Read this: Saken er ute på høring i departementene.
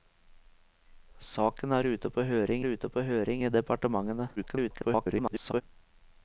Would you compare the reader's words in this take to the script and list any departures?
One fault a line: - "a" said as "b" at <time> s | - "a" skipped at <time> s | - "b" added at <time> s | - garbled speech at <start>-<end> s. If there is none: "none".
- "ute på høring" added at 2.6 s
- garbled speech at 4.4-5.6 s